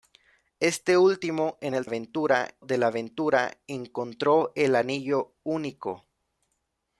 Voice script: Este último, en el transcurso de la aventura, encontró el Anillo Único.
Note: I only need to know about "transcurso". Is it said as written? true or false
false